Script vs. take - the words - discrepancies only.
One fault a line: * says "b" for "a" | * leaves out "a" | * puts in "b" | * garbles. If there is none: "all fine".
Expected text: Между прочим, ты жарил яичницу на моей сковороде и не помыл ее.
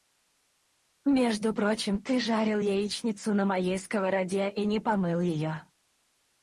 all fine